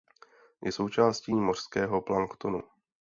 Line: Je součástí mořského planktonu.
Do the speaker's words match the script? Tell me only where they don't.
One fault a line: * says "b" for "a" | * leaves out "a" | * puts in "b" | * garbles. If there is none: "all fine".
all fine